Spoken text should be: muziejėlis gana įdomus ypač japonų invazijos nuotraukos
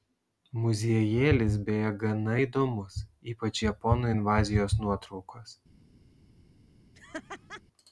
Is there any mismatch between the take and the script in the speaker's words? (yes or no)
yes